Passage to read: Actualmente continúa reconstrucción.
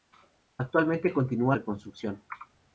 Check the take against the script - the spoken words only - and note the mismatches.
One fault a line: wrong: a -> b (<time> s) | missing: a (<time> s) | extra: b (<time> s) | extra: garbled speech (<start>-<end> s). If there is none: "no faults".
no faults